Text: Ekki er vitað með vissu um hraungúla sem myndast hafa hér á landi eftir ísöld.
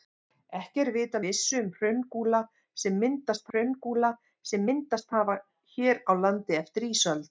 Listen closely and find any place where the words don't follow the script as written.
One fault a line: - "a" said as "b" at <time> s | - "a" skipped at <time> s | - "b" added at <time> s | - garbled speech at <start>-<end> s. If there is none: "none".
- "með" skipped at 1.2 s
- "hraungúla sem myndast" added at 3.5 s